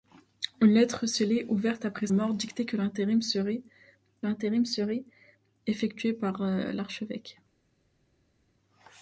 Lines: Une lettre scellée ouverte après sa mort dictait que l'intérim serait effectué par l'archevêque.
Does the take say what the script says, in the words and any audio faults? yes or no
no